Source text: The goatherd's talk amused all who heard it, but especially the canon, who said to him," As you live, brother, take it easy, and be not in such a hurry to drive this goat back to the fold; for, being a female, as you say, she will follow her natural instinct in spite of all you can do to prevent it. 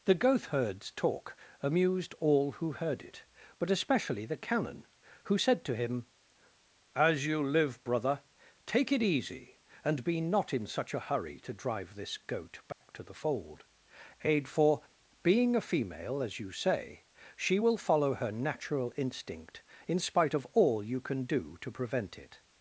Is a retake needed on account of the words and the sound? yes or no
yes